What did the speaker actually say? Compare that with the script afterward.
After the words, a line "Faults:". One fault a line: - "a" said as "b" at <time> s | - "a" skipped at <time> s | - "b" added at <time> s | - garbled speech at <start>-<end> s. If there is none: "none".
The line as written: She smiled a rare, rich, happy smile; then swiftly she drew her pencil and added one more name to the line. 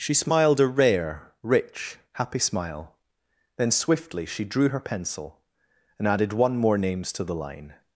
She smiled a rare, rich, happy smile; then swiftly she drew her pencil and added one more names to the line.
Faults:
- "name" said as "names" at 6.8 s